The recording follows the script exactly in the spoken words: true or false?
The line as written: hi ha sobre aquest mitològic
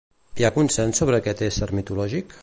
false